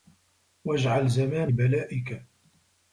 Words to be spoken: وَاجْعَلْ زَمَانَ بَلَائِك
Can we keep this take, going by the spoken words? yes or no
yes